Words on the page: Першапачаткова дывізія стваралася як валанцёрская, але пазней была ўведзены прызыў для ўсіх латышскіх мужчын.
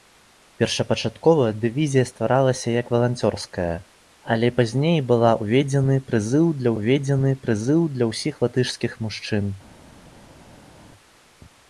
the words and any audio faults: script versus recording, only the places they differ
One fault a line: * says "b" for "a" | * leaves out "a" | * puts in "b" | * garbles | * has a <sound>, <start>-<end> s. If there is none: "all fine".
* puts in "ўведзены прызыў для"